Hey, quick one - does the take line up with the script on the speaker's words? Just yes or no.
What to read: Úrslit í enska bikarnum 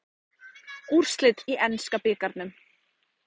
yes